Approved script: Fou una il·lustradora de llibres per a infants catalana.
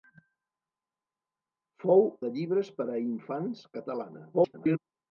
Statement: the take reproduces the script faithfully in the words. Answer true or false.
false